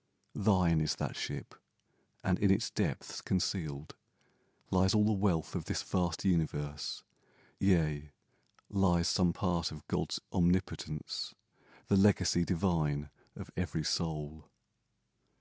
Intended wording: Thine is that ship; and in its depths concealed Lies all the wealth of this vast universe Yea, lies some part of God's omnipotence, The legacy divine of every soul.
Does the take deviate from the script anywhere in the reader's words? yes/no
no